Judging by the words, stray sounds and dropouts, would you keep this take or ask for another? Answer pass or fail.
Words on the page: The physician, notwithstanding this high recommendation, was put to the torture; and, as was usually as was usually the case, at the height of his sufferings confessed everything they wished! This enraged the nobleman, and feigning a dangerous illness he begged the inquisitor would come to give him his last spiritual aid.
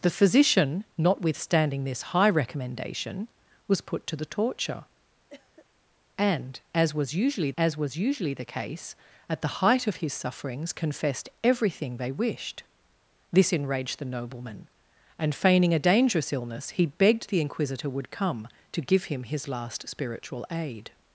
fail